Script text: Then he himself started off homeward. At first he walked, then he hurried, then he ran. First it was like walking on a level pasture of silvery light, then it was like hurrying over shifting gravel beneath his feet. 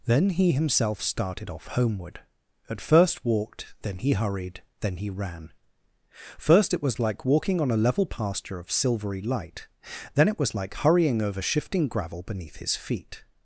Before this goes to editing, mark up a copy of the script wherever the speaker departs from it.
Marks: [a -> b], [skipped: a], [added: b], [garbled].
Then he himself started off homeward. At first [skipped: he] walked, then he hurried, then he ran. First it was like walking on a level pasture of silvery light, then it was like hurrying over shifting gravel beneath his feet.